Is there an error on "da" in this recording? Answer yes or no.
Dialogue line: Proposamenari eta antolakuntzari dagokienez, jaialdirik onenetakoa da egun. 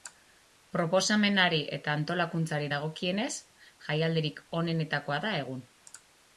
no